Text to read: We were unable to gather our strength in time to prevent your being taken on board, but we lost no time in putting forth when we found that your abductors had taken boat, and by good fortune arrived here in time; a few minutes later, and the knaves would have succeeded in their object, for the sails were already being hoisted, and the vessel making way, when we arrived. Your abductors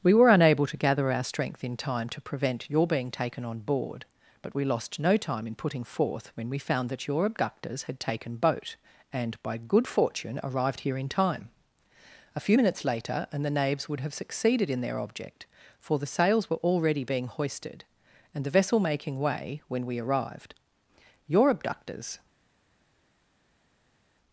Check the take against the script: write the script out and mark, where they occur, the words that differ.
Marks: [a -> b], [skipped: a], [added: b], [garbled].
We were unable to gather our strength in time to prevent your being taken on board, but we lost no time in putting forth when we found that your abductors had taken boat, and by good fortune arrived here in time; a few minutes later, and the knaves would have succeeded in their object, for the sails were already being hoisted, and the vessel making way, when we arrived. Your abductors